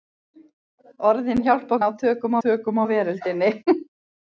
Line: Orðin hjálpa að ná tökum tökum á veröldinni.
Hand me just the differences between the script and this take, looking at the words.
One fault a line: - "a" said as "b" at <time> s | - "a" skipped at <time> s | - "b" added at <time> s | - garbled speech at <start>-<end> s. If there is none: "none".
none